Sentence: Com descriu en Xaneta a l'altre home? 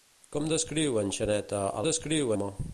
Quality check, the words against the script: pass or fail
fail